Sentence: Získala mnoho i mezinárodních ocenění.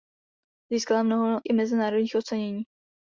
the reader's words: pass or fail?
pass